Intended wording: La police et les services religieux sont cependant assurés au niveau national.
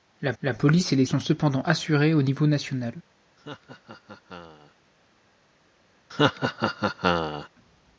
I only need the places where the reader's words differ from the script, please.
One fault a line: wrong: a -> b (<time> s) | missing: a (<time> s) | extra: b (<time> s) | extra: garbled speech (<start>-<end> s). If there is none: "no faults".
extra: la (0.4 s)
missing: services religieux (1.1 s)